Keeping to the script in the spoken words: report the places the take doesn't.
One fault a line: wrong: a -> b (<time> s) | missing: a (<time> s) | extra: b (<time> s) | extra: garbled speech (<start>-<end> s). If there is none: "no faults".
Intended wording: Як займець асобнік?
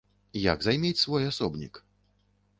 extra: свой (1.0 s)